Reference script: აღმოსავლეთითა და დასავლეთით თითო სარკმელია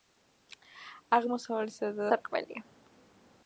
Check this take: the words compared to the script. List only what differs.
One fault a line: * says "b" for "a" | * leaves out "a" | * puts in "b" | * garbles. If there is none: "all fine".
* leaves out "დასავლეთით თითო"